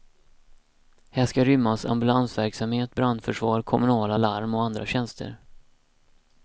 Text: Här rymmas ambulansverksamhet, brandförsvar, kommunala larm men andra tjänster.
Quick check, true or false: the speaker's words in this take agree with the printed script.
false